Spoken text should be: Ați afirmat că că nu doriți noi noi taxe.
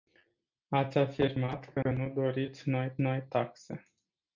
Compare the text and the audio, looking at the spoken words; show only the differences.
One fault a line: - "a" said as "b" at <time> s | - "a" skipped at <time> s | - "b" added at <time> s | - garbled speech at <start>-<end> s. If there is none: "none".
none